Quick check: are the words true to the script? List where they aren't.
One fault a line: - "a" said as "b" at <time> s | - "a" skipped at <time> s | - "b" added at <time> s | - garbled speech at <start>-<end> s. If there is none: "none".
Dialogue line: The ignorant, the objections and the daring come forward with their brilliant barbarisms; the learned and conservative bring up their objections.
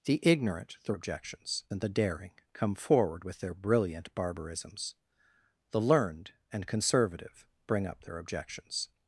none